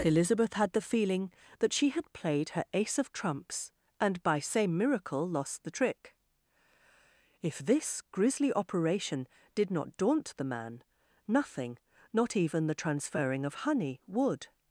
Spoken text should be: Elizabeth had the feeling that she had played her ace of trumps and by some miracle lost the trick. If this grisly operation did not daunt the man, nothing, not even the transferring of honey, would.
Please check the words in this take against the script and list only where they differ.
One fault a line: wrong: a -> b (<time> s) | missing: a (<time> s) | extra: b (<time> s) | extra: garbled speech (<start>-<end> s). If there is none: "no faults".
wrong: some -> same (4.4 s)